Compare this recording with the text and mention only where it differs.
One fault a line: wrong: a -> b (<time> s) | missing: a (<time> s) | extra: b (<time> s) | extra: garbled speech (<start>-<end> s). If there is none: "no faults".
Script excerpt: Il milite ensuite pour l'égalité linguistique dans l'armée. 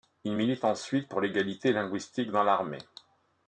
no faults